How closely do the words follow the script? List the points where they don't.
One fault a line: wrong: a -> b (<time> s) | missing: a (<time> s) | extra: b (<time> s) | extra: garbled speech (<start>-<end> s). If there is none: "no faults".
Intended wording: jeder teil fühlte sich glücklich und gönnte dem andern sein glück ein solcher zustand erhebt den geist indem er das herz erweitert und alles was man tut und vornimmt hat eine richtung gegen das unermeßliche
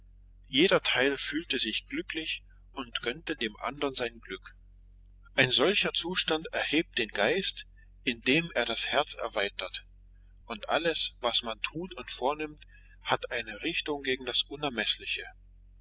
no faults